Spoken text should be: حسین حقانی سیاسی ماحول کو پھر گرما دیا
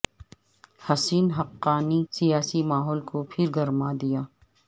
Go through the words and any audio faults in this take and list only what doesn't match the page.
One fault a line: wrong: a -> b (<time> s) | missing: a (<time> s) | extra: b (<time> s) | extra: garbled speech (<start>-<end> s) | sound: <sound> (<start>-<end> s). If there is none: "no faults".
no faults